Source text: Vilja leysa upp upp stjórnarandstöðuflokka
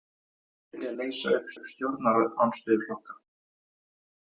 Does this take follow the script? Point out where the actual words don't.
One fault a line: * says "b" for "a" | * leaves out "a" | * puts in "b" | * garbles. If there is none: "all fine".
all fine